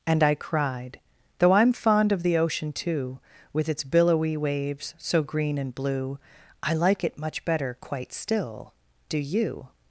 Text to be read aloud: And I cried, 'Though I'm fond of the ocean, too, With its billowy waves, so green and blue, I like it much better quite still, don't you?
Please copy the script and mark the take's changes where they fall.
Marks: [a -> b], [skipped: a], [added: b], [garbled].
And I cried, 'Though I'm fond of the ocean, too, With its billowy waves, so green and blue, I like it much better quite still, [don't -> do] you?